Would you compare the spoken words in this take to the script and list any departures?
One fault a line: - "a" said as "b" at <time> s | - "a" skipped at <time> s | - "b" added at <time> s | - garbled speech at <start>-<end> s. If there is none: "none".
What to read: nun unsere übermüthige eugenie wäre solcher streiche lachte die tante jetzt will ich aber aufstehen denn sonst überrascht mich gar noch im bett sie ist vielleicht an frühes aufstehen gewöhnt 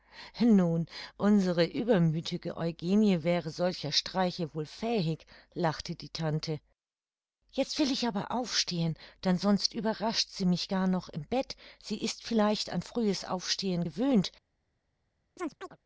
- "wohl fähig" added at 4.5 s
- "sie" added at 10.3 s